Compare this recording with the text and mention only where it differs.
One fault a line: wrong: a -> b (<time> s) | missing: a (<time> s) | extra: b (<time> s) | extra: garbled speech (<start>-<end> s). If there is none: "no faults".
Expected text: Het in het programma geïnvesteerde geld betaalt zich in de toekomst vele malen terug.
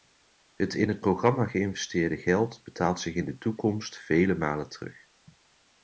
no faults